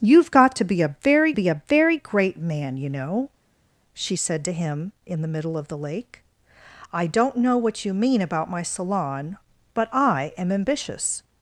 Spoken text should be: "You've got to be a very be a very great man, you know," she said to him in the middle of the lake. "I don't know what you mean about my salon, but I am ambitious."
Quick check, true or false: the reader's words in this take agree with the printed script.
true